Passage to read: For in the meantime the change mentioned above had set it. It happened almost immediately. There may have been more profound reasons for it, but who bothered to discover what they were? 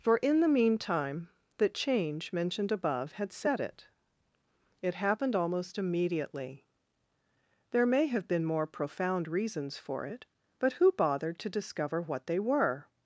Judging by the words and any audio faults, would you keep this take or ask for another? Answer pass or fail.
pass